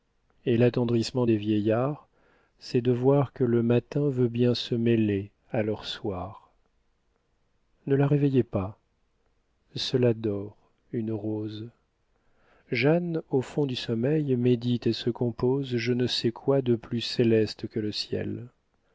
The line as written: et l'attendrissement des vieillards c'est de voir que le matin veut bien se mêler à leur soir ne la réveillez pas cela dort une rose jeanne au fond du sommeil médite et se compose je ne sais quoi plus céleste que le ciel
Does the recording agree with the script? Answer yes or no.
no